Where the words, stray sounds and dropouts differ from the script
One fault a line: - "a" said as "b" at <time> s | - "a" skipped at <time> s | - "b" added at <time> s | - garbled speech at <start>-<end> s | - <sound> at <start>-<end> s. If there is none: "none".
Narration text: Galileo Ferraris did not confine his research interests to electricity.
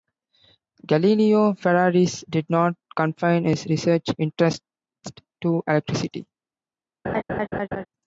- laugh at 7.0-7.9 s